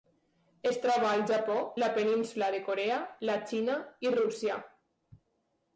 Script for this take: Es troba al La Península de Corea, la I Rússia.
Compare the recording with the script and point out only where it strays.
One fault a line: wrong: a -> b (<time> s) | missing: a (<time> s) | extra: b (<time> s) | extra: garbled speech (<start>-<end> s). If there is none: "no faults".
extra: Japó (1.3 s)
extra: Xina (3.5 s)